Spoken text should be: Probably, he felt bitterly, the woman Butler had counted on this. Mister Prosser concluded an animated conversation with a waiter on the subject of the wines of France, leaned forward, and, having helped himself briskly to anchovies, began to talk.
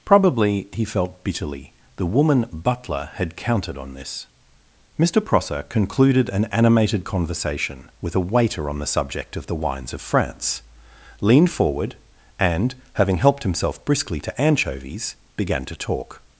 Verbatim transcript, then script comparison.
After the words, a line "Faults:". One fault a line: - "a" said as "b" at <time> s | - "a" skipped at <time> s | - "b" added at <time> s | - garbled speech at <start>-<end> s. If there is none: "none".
Probably, he felt bitterly, the woman Butler had counted on this. Mister Prosser concluded an animated conversation with a waiter on the subject of the wines of France, leaned forward, and, having helped himself briskly to anchovies, began to talk.
Faults:
none